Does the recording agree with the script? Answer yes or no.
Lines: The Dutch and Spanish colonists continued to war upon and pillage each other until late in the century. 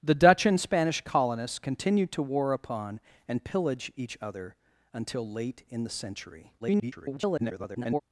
no